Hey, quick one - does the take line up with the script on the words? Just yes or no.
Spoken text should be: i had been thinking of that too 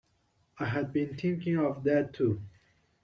yes